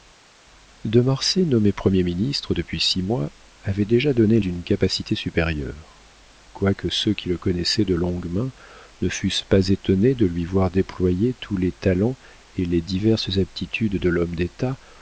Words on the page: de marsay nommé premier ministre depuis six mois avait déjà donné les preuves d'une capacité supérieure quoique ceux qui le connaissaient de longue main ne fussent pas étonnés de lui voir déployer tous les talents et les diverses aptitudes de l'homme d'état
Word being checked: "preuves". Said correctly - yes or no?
no